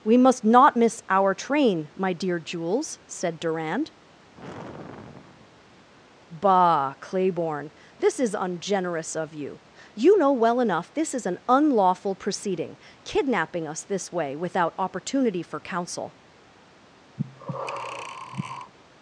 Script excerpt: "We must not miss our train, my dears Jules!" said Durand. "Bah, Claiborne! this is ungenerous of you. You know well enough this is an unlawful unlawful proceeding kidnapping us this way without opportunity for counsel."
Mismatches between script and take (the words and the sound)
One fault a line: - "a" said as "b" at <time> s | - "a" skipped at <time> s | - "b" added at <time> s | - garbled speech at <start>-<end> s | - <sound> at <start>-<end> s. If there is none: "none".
- "dears" said as "dear" at 2.1 s
- sigh at 4.3-5.9 s
- "unlawful" skipped at 12.2 s
- breath at 17.2-18.7 s